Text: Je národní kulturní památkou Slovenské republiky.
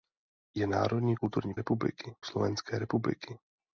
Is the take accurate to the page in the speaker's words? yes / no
no